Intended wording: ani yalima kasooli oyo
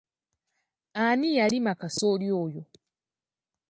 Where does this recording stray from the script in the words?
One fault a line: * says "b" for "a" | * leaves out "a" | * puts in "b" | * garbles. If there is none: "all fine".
all fine